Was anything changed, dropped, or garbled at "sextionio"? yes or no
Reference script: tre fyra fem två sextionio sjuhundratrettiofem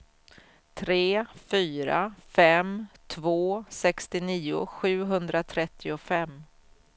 no